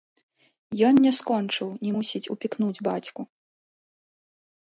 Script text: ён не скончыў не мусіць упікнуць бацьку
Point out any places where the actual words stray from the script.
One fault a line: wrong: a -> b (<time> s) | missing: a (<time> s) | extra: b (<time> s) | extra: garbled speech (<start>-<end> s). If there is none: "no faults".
no faults